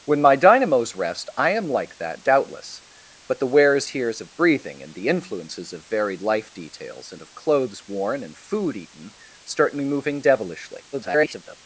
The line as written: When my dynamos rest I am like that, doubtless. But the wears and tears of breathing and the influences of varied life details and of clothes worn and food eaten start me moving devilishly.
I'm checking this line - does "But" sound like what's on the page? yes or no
yes